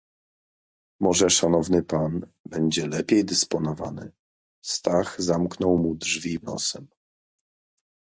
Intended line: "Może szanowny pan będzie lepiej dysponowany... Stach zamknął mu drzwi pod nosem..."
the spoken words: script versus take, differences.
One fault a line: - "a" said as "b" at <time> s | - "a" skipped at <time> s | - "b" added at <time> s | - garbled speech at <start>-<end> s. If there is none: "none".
- "pod" skipped at 6.4 s